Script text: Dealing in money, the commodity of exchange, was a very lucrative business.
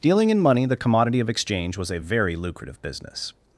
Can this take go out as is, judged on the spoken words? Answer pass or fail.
pass